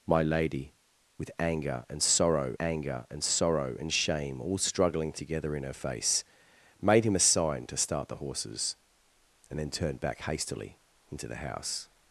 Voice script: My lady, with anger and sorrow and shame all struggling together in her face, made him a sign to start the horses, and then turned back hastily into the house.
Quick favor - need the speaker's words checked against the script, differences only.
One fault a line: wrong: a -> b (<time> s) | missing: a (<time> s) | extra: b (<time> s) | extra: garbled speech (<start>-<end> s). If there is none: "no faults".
extra: anger and sorrow (2.6 s)